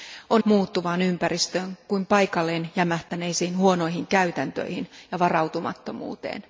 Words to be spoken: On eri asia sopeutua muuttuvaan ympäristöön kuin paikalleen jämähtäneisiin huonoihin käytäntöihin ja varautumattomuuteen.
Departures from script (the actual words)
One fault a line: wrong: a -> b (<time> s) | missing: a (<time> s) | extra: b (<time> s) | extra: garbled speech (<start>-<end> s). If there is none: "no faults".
missing: eri asia sopeutua (0.4 s)